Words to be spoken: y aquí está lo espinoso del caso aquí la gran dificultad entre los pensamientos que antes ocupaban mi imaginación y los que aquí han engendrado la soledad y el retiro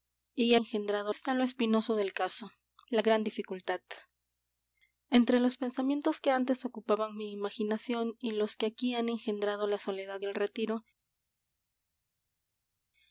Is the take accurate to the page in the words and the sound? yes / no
no